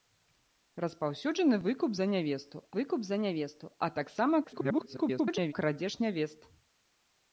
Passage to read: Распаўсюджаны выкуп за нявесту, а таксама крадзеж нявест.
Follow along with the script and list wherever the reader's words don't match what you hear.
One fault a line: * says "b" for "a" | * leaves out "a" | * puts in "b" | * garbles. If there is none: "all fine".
* puts in "выкуп за нявесту"
* garbles